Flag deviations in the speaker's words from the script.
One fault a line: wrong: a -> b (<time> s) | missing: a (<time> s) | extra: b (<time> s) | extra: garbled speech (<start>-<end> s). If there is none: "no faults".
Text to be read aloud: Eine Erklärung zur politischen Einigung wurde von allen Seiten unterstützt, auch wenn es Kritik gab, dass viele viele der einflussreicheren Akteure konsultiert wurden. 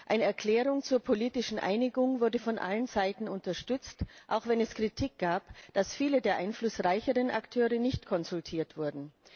missing: viele (6.2 s)
extra: nicht (7.8 s)